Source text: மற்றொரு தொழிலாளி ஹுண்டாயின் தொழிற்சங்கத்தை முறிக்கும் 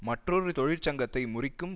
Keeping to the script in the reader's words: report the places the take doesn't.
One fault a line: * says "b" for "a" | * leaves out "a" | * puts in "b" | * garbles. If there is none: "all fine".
* leaves out "தொழிலாளி ஹுண்டாயின்"